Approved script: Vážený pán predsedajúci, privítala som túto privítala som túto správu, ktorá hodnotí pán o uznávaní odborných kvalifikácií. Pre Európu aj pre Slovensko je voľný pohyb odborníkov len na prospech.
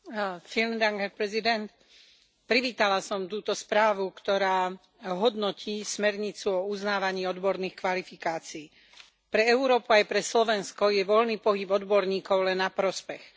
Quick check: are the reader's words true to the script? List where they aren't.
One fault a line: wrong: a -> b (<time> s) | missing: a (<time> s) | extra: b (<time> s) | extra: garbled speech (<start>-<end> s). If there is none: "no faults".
missing: privítala som túto (3.5 s)
wrong: pán -> smernicu (5.8 s)